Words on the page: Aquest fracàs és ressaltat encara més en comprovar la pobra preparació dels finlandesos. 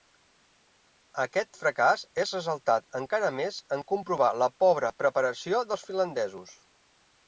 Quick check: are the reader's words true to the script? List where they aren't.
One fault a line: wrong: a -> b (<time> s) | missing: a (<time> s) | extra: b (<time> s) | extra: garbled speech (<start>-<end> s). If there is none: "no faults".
no faults